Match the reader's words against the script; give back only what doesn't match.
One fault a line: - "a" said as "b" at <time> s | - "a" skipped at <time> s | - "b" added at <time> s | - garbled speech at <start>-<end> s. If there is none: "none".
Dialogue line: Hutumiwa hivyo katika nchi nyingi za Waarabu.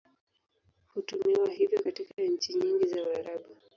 none